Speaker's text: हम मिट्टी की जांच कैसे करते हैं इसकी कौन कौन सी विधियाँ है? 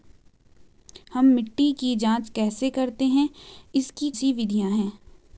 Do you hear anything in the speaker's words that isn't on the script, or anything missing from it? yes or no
yes